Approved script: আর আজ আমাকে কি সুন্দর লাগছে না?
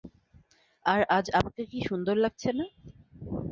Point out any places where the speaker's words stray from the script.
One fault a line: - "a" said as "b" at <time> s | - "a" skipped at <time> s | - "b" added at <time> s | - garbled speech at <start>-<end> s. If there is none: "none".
none